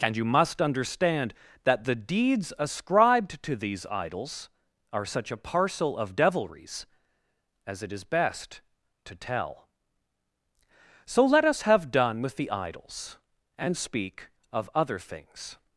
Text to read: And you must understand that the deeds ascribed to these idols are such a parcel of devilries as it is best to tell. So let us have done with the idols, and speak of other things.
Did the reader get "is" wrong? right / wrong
right